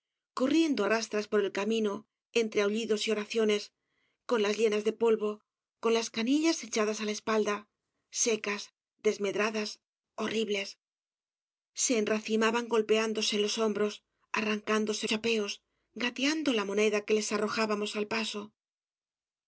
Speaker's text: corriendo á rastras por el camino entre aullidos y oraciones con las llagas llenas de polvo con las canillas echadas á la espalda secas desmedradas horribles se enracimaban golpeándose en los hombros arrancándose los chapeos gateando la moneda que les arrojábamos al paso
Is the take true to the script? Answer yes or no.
no